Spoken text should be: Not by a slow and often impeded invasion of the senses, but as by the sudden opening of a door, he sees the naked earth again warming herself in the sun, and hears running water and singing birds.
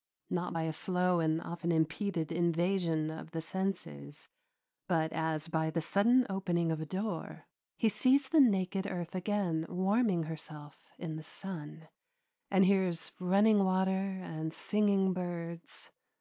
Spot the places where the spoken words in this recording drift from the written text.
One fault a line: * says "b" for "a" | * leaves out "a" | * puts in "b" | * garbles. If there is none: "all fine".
all fine